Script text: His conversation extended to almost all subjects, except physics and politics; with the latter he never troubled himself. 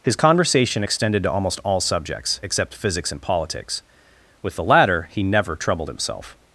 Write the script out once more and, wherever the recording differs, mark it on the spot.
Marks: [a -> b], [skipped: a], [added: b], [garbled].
His conversation extended to almost all subjects, except physics and politics; with the latter he never troubled himself.